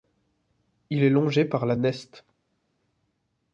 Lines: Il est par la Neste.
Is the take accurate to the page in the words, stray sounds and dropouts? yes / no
no